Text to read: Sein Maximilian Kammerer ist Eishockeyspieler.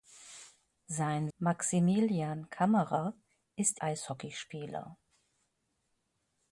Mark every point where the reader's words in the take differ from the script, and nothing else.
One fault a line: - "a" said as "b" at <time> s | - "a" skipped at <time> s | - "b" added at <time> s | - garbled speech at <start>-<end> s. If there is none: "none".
none